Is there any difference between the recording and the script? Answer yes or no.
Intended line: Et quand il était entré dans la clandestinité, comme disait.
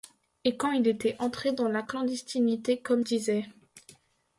no